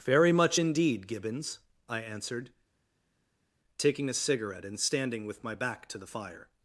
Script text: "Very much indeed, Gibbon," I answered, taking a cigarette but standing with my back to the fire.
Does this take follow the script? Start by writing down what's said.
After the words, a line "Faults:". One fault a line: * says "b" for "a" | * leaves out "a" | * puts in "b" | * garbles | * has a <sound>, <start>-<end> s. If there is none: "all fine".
"Very much indeed, Gibbons," I answered, taking a cigarette and standing with my back to the fire.
Faults:
* says "Gibbons" for "Gibbon"
* says "and" for "but"